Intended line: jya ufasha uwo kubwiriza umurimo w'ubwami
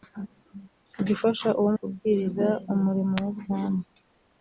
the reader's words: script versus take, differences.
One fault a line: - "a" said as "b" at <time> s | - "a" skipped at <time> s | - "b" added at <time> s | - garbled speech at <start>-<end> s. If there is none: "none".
none